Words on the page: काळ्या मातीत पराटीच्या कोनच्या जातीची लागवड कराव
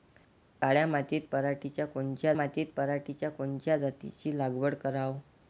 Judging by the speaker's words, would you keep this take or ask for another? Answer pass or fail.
fail